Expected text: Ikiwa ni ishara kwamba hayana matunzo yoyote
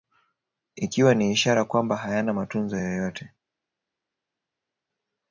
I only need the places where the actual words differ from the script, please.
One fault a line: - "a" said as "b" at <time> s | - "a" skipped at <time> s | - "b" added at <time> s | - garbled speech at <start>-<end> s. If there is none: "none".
none